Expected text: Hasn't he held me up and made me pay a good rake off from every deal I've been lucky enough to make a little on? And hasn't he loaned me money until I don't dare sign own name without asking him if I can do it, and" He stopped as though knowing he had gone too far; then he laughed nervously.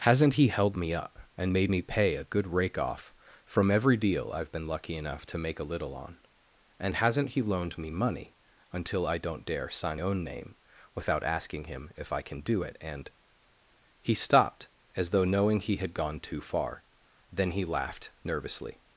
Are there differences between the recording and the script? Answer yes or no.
no